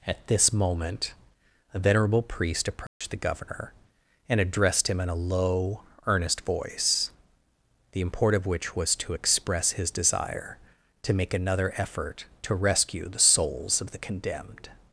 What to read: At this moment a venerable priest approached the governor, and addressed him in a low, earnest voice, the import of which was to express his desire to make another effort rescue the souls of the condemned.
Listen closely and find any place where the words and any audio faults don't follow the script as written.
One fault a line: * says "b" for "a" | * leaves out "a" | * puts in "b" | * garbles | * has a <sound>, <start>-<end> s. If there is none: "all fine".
* has a dropout, 2.9-3.0 s
* puts in "to"